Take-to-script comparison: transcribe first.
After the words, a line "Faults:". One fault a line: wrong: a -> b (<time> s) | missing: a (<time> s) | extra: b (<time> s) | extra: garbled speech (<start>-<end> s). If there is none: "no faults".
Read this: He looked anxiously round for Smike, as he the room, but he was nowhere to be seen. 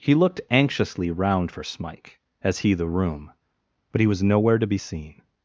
He looked anxiously round for Smike, as he the room, but he was nowhere to be seen.
Faults:
no faults